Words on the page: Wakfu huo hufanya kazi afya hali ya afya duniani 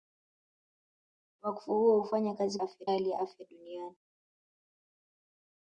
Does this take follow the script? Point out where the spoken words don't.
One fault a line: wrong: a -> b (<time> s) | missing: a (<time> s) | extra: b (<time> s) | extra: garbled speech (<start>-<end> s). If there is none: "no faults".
no faults